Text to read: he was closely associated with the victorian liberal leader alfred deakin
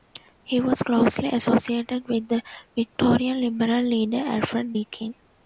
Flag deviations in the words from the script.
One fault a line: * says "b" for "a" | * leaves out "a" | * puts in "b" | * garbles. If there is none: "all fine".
all fine